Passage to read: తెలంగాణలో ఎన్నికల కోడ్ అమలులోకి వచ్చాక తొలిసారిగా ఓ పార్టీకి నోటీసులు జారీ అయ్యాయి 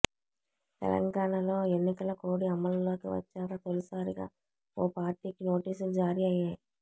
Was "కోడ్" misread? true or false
false